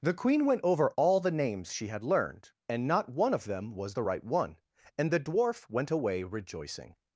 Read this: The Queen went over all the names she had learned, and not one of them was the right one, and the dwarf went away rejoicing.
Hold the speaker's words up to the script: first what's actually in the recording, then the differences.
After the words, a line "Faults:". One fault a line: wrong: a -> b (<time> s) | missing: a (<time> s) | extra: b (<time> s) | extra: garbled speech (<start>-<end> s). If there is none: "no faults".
The Queen went over all the names she had learned, and not one of them was the right one, and the dwarf went away rejoicing.
Faults:
no faults